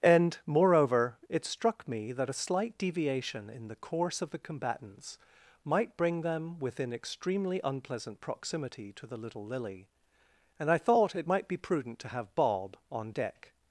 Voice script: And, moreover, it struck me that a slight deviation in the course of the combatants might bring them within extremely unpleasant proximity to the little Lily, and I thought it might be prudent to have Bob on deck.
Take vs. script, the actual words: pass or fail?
pass